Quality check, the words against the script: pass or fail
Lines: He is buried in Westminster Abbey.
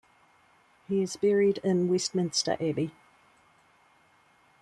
pass